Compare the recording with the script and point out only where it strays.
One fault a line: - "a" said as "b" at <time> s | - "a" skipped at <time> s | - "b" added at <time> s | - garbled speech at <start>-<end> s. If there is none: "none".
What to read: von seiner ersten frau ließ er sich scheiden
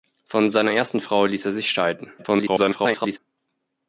- garbled speech at 2.2-3.2 s